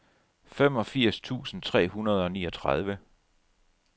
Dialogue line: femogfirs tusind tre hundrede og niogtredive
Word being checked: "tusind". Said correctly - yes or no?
yes